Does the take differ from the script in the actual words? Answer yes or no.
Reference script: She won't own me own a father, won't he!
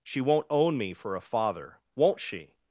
yes